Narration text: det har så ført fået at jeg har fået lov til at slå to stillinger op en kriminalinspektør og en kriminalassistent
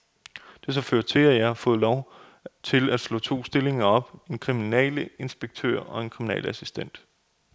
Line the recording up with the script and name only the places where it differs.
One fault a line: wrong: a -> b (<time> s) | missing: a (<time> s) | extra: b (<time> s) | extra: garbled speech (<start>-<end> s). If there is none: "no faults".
wrong: fået -> til (1.1 s)